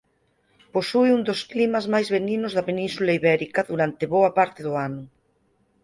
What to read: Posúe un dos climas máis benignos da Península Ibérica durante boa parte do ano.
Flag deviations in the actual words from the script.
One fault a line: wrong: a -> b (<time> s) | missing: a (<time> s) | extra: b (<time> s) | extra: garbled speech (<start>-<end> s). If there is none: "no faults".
no faults